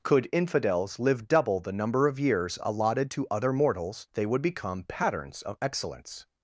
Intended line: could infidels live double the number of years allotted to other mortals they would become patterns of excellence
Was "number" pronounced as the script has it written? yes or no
yes